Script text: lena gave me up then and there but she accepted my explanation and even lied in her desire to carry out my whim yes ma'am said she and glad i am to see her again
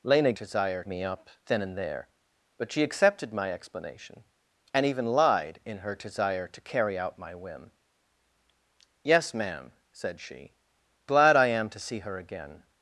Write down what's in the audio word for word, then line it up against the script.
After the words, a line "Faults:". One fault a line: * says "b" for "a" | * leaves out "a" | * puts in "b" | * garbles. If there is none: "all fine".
lena desire me up then and there but she accepted my explanation and even lied in her desire to carry out my whim yes ma'am said she glad i am to see her again
Faults:
* says "desire" for "gave"
* leaves out "and"